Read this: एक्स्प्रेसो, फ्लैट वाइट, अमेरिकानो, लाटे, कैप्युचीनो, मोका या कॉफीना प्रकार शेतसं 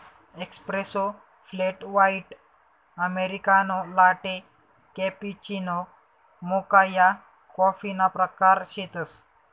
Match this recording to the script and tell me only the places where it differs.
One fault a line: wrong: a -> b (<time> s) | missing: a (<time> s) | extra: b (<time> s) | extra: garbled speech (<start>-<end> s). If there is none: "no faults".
no faults